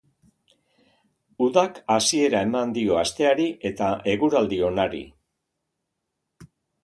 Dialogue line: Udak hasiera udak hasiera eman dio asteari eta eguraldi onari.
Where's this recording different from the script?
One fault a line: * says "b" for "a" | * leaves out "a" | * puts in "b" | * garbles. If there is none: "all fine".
* leaves out "udak hasiera"